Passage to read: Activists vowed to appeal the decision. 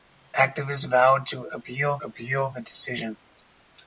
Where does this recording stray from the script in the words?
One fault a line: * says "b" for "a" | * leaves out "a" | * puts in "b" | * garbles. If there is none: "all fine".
* puts in "appeal"